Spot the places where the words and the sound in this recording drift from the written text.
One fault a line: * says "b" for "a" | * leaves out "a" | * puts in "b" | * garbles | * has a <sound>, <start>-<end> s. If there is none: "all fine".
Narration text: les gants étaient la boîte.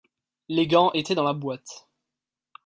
* puts in "dans"